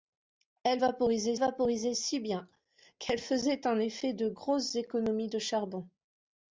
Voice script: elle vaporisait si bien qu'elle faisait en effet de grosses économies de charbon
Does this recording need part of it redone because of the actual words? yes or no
yes